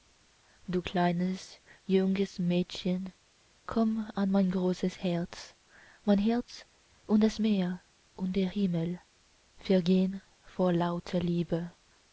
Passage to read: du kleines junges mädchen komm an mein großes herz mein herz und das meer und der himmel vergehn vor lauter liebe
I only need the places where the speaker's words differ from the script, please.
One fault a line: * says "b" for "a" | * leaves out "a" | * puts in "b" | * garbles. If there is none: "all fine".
all fine